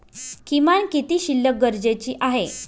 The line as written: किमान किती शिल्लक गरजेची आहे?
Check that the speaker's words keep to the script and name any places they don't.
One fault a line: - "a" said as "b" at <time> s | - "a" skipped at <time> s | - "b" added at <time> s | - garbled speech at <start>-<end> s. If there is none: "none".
none